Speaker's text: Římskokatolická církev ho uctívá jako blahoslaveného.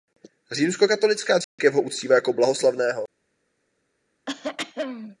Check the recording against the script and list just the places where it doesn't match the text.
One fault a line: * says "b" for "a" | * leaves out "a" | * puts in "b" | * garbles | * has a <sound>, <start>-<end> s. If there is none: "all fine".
* has a dropout, 1.4-1.6 s
* has a throat clearing, 4.3-5.2 s